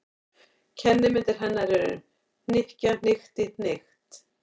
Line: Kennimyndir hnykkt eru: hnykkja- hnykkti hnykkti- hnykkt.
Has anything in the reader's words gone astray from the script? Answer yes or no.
yes